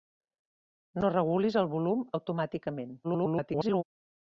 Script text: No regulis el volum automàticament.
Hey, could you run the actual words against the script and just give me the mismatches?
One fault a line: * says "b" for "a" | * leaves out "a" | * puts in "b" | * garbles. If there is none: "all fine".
* garbles